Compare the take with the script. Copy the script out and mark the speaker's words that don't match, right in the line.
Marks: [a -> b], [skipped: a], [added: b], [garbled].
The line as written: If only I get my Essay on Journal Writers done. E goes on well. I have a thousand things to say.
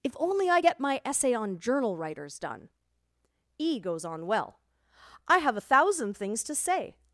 If only I get my Essay on Journal Writers done. E goes on well. I have a thousand things to say.